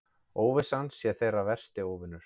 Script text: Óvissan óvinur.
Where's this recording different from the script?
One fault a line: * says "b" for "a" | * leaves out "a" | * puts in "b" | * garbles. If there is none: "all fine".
* puts in "sé þeirra versti"